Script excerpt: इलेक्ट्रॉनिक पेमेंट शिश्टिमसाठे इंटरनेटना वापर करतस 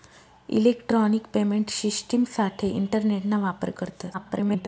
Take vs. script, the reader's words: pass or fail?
fail